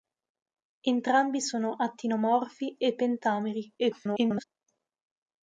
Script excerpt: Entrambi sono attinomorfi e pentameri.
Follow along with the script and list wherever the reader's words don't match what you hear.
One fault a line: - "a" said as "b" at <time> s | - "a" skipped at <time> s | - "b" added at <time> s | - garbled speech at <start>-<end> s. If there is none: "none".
- garbled speech at 3.8-4.4 s